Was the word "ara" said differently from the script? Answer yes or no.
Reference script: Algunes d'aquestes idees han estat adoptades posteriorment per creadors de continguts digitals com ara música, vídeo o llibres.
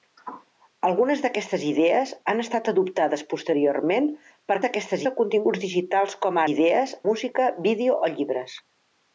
yes